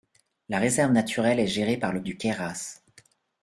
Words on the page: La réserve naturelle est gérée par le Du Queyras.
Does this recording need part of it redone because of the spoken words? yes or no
no